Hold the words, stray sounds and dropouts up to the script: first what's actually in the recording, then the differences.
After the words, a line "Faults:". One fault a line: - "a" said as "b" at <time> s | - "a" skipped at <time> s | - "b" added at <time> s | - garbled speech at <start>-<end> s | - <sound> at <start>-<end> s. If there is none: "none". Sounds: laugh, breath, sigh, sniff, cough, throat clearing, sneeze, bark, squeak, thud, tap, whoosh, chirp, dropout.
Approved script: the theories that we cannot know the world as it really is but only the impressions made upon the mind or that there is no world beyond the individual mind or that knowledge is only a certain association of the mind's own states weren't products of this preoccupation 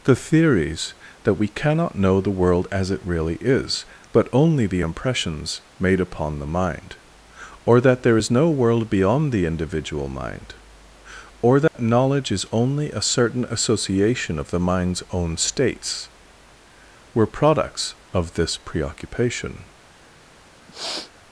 the theories that we cannot know the world as it really is but only the impressions made upon the mind or that there is no world beyond the individual mind or that knowledge is only a certain association of the mind's own states were products of this preoccupation
Faults:
- dropout at 11.7-11.7 s
- "weren't" said as "were" at 17.2 s
- sniff at 20.7-21.1 s